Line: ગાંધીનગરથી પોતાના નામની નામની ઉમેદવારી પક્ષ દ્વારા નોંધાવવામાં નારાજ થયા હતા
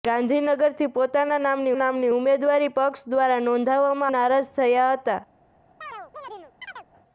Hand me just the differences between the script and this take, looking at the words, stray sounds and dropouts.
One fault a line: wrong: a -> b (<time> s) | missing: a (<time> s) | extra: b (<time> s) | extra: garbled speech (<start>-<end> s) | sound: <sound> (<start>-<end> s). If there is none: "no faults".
sound: chirp (5.8-6.9 s)